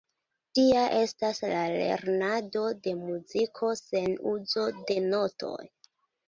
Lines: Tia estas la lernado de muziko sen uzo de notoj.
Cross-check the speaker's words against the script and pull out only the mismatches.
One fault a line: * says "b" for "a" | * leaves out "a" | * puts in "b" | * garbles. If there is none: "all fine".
all fine